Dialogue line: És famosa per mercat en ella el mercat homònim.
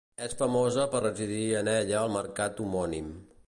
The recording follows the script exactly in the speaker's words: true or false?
false